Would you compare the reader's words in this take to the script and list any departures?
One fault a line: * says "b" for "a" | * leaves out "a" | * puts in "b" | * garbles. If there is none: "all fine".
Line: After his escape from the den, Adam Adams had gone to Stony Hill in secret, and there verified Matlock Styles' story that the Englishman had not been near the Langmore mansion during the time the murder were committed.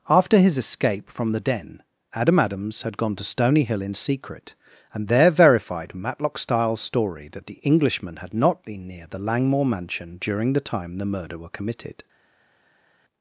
all fine